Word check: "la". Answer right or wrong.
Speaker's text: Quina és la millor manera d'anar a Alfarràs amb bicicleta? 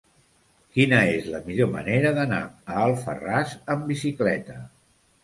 right